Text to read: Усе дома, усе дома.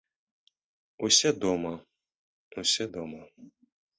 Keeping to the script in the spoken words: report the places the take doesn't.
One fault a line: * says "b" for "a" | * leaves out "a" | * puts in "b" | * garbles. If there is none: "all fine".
all fine